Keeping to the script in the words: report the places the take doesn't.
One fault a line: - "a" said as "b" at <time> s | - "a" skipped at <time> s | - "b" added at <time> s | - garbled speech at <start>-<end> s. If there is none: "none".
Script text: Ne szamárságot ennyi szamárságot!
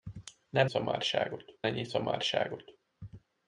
none